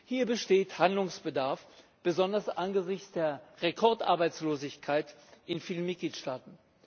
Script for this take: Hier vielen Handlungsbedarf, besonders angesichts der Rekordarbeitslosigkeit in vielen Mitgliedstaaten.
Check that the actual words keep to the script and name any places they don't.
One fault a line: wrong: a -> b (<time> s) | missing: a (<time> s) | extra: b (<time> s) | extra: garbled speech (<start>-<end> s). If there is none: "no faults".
wrong: vielen -> besteht (0.2 s)